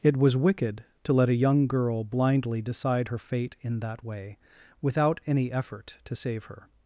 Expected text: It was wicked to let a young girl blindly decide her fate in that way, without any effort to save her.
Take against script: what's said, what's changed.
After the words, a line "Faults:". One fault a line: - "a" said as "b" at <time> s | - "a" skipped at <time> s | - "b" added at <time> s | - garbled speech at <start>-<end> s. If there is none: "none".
It was wicked to let a young girl blindly decide her fate in that way, without any effort to save her.
Faults:
none